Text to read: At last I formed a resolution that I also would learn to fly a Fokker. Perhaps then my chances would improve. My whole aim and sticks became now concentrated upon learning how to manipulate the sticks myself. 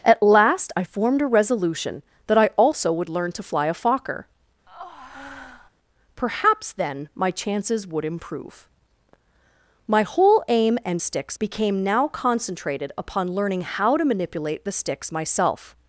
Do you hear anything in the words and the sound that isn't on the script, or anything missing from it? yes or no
yes